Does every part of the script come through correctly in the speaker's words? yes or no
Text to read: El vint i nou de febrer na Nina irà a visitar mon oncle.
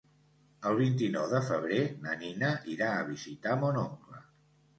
yes